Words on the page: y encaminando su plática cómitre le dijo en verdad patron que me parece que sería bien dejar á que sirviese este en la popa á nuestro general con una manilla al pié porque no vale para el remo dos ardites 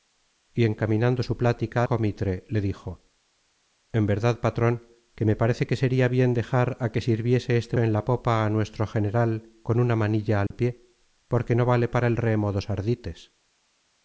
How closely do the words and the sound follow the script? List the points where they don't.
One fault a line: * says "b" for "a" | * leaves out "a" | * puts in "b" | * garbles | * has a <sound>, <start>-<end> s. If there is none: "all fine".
* has a dropout, 10.5-10.5 s